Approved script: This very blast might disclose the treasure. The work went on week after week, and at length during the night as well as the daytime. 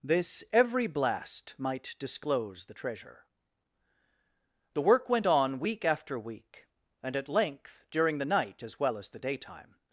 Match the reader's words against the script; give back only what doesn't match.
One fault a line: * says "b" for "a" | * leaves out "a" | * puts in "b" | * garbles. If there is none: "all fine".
* says "every" for "very"